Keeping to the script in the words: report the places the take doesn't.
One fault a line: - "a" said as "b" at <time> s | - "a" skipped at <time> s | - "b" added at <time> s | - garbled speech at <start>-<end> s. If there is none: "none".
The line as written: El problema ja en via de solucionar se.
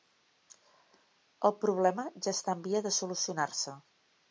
- "està" added at 2.4 s